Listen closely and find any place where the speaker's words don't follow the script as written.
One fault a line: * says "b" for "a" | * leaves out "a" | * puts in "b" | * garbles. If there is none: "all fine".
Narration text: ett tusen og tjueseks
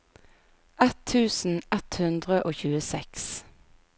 * puts in "ett hundre"